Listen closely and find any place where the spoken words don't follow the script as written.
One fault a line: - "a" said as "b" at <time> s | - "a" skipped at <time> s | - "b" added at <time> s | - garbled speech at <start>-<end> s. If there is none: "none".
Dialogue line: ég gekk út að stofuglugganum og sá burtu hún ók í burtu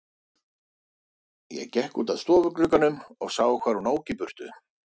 - "burtu" said as "hvar" at 3.5 s